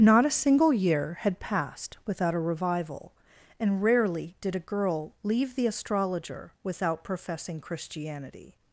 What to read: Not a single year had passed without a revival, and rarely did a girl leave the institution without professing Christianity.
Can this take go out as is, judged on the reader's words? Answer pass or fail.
fail